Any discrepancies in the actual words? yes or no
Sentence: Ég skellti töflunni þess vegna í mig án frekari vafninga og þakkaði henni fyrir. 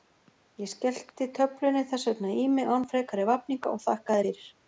yes